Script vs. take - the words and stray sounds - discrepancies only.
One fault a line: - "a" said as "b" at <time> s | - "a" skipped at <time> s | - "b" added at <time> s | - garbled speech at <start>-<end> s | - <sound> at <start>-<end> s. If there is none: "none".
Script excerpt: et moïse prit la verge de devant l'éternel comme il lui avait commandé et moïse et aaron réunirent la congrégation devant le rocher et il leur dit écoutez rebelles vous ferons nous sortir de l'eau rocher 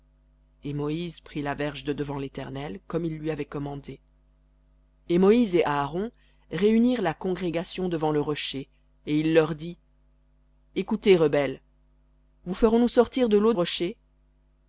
none